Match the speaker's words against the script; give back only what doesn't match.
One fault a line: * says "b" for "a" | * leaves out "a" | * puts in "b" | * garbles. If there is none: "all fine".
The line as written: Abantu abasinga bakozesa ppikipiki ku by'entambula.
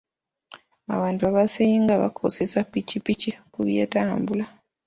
all fine